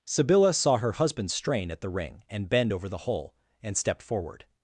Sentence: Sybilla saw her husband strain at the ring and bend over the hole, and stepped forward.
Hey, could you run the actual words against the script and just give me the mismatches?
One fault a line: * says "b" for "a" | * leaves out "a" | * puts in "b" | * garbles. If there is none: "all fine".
all fine